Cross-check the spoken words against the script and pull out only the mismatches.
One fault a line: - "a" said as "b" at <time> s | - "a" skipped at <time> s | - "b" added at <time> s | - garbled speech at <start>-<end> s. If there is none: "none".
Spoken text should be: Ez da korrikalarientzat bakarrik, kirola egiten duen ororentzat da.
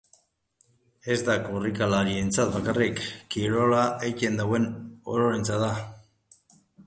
none